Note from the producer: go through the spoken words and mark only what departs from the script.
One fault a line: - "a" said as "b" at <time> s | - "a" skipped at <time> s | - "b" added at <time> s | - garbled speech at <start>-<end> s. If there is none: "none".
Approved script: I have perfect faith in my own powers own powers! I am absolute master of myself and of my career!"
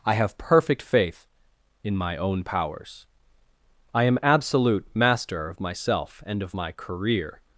- "own powers" skipped at 3.0 s